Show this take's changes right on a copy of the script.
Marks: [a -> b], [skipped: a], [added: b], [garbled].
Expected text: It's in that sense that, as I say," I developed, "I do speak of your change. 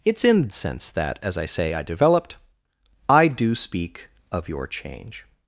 It's in [skipped: that] sense that, as I say," I developed, "I do speak of your change.